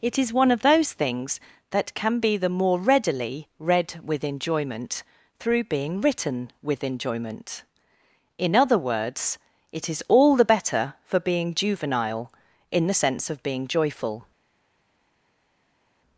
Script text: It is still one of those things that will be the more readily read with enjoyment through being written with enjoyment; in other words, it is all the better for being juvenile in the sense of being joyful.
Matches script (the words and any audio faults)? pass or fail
fail